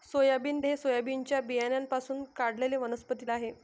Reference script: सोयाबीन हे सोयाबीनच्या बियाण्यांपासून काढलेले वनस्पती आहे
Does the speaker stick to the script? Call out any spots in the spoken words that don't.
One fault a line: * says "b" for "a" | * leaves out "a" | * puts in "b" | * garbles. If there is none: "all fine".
all fine